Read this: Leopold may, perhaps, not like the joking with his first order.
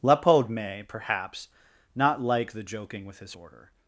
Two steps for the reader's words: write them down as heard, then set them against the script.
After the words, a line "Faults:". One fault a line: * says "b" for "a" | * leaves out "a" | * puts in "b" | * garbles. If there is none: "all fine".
Leopold may, perhaps, not like the joking with his order.
Faults:
* leaves out "first"